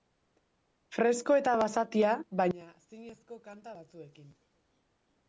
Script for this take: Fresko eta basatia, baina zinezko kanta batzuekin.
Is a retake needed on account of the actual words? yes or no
no